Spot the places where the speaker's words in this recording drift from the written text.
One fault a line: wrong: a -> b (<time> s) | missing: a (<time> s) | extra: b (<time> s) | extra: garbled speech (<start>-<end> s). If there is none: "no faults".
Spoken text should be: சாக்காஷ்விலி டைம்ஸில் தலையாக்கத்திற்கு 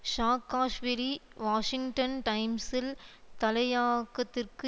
extra: வாஷிங்டன் (1.4 s)